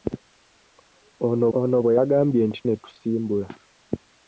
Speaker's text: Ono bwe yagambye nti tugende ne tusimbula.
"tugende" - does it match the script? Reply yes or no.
no